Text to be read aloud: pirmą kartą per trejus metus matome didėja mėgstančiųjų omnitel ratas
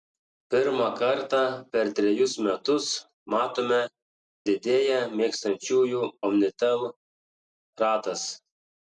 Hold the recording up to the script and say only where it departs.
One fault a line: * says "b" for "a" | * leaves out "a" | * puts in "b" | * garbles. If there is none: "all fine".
all fine